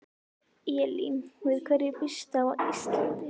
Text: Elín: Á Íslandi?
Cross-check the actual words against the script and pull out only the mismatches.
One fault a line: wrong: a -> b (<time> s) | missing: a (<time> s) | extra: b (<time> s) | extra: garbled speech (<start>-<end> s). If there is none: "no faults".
extra: Við hverju býstu (1.5 s)